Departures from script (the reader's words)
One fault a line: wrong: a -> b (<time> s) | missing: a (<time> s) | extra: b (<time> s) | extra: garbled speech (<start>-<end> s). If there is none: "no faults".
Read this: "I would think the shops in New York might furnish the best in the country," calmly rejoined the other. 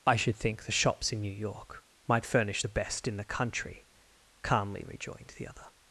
wrong: would -> should (0.1 s)